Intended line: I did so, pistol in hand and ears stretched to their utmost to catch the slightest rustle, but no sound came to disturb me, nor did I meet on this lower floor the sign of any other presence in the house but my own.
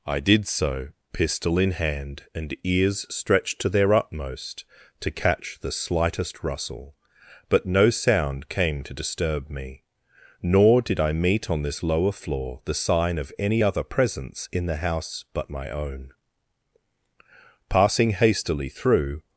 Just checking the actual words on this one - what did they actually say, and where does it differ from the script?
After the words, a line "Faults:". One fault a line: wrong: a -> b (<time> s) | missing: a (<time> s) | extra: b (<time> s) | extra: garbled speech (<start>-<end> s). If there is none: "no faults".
I did so, pistol in hand and ears stretched to their utmost to catch the slightest rustle, but no sound came to disturb me, nor did I meet on this lower floor the sign of any other presence in the house but my own. Passing hastily through
Faults:
extra: Passing hastily through (17.7 s)